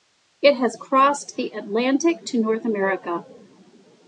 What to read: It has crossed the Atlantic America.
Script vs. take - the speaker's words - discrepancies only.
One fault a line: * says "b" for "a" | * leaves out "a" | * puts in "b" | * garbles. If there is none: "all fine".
* puts in "to North"